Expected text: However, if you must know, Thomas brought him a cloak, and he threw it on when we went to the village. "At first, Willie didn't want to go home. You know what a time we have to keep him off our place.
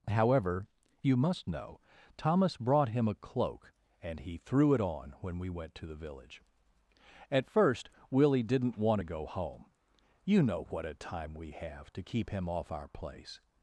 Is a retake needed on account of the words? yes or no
yes